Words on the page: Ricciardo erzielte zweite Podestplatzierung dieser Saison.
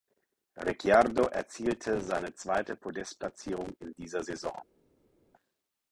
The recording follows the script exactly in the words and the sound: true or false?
false